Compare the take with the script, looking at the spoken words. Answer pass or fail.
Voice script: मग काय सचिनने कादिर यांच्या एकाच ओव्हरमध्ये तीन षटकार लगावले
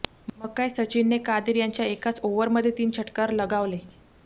pass